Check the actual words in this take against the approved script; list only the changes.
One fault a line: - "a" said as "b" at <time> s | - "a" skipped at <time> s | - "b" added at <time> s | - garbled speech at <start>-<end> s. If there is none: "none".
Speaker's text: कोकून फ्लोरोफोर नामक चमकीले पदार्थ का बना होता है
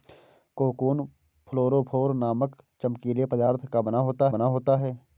- "बना होता" added at 4.3 s